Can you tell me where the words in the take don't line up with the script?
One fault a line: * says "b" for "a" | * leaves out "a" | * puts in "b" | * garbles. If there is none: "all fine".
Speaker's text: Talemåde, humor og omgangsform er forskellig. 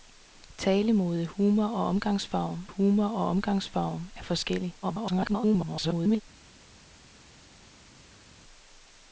* puts in "humor og omgangsform"
* garbles